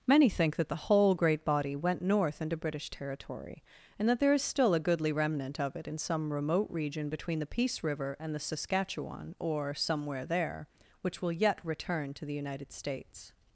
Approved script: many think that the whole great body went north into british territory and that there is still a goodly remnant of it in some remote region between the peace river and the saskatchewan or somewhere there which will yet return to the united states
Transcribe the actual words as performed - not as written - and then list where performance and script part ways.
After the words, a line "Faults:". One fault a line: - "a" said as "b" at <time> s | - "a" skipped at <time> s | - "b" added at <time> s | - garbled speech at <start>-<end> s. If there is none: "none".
many think that the whole great body went north into british territory and that there is still a goodly remnant of it in some remote region between the peace river and the saskatchewan or somewhere there which will yet return to the united states
Faults:
none